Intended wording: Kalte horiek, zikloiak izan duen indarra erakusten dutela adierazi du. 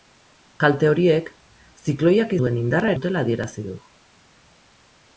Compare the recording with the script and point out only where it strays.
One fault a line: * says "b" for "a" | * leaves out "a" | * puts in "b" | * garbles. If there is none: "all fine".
* leaves out "izan"
* leaves out "erakusten"